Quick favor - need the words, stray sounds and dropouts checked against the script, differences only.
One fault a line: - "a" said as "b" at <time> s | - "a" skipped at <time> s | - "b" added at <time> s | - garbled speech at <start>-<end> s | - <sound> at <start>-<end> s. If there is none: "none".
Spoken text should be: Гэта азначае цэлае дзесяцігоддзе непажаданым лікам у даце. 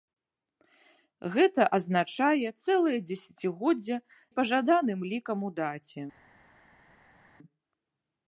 none